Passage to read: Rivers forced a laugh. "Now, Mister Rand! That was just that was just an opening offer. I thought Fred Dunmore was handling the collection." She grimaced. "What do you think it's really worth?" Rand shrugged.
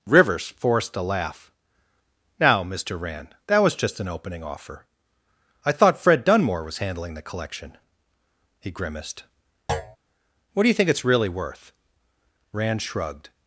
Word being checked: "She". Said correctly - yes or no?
no